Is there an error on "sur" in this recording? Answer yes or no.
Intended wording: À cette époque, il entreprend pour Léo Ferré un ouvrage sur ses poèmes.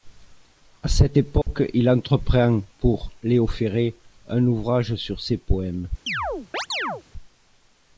no